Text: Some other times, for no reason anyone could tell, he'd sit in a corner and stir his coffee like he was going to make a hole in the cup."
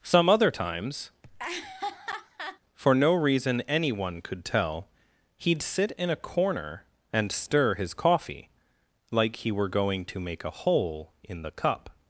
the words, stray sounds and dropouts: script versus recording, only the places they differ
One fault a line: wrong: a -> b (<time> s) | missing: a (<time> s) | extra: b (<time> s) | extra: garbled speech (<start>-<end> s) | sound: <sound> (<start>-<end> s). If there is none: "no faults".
sound: laugh (1.2-2.6 s)
wrong: was -> were (9.5 s)